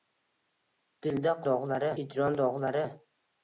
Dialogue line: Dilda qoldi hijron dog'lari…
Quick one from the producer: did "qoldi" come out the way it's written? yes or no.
no